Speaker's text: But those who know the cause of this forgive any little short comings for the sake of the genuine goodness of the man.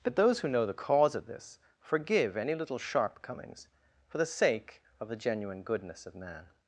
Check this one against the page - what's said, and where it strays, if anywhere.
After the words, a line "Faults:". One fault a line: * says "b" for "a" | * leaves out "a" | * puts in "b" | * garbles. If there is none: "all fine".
But those who know the cause of this forgive any little sharp comings for the sake of the genuine goodness of man.
Faults:
* says "sharp" for "short"
* leaves out "the"